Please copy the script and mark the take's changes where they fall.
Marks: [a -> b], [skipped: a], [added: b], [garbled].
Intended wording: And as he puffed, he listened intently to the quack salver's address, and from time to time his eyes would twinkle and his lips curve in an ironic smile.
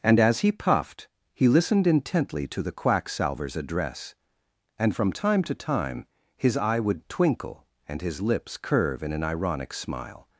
And as he puffed, he listened intently to the quack salver's address, and from time to time his [eyes -> eye] would twinkle and his lips curve in an ironic smile.